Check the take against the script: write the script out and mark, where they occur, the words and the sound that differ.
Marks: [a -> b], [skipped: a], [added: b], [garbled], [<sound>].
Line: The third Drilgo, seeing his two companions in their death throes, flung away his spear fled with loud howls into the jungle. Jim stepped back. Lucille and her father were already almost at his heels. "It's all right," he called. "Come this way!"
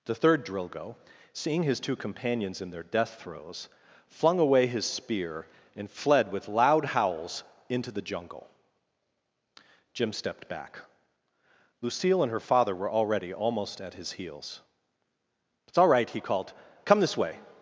The third Drilgo, seeing his two companions in their death throes, flung away his spear [added: and] fled with loud howls into the jungle. Jim stepped back. Lucille and her father were already almost at his heels. "It's all right," he called. "Come this way!"